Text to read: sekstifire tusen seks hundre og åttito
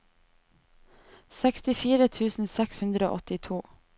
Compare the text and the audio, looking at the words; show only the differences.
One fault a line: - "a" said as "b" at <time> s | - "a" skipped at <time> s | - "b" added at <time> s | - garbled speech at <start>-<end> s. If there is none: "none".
none